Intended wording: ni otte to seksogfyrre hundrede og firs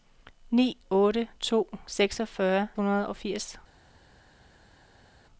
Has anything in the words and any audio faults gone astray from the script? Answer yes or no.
no